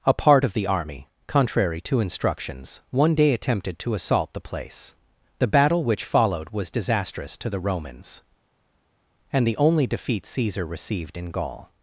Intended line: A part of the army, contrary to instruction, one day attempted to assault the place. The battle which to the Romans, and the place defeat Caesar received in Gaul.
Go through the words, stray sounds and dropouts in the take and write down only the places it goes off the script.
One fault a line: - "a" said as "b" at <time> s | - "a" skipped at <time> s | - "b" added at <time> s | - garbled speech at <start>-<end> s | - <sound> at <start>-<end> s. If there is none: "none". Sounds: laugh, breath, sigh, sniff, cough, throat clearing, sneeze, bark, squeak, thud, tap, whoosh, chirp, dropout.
- "instruction" said as "instructions" at 2.0 s
- "followed was disastrous" added at 6.1 s
- "place" said as "only" at 9.6 s